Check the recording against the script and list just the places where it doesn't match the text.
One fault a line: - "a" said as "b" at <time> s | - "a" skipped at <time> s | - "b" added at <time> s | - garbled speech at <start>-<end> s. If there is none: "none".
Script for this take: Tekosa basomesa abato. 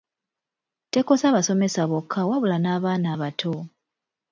- "bokka wabula n'abaana" added at 1.9 s